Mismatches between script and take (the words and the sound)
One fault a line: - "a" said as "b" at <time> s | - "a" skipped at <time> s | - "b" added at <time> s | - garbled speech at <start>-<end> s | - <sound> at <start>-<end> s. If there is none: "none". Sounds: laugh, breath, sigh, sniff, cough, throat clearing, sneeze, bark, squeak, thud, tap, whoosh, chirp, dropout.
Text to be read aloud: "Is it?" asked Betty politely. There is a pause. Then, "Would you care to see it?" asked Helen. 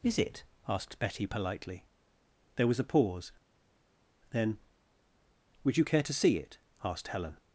- "is" said as "was" at 2.7 s